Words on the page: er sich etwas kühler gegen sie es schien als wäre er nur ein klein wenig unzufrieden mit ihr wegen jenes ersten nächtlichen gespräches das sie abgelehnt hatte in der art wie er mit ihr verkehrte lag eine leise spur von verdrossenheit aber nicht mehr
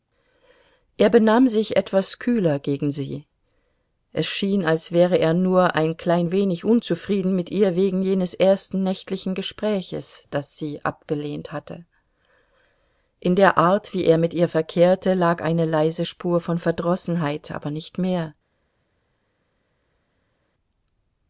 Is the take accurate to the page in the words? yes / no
no